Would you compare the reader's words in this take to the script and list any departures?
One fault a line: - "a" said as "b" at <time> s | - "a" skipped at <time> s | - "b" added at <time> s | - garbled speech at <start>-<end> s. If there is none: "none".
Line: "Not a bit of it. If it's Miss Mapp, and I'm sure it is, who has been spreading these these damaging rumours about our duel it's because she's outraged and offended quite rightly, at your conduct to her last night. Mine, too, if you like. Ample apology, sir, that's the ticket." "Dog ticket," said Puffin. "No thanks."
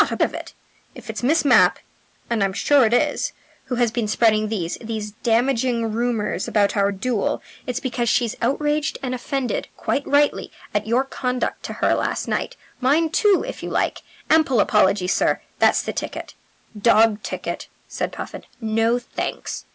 - "bit" skipped at 0.2 s